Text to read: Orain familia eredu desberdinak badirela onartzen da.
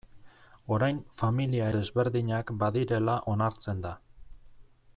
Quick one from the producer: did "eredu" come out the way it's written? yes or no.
no